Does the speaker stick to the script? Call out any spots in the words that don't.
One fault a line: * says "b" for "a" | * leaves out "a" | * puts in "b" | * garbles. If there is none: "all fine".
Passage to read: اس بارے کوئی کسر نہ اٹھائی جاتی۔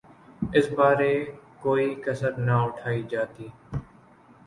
all fine